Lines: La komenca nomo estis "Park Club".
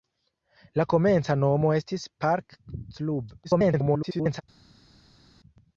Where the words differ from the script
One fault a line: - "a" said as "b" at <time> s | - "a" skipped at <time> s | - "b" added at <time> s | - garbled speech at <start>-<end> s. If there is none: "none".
- garbled speech at 3.4-4.4 s